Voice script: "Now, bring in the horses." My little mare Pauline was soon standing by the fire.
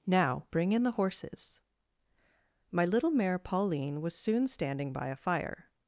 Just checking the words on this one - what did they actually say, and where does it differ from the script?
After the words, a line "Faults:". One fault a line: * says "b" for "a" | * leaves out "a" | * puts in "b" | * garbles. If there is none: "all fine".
"Now, bring in the horses." My little mare Pauline was soon standing by a fire.
Faults:
* says "a" for "the"